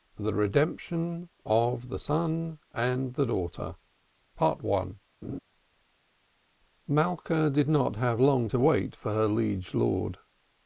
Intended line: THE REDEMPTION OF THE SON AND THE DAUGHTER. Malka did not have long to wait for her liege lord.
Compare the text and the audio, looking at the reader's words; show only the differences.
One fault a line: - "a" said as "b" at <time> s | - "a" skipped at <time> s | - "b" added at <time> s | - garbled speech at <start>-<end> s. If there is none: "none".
none